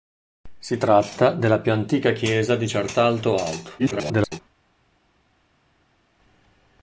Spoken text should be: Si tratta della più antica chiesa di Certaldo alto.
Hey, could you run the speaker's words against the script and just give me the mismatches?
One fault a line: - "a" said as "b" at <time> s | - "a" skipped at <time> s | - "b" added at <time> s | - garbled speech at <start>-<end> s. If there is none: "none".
- garbled speech at 3.8-4.4 s